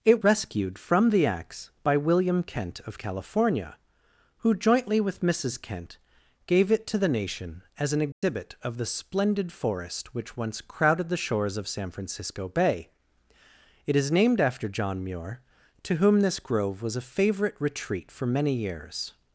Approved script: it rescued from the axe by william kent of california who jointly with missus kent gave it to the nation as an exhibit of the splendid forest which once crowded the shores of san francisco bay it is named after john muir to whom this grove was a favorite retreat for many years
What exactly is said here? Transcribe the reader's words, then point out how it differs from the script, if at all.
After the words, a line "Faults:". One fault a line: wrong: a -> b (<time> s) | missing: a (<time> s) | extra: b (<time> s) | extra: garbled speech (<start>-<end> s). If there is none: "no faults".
it rescued from the axe by william kent of california who jointly with missus kent gave it to the nation as an exhibit of the splendid forest which once crowded the shores of san francisco bay it is named after john muir to whom this grove was a favorite retreat for many years
Faults:
no faults